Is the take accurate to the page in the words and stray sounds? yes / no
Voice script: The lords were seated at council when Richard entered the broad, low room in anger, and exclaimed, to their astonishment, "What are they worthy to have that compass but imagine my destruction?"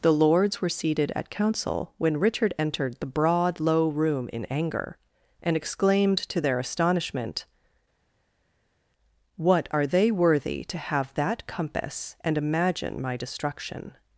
no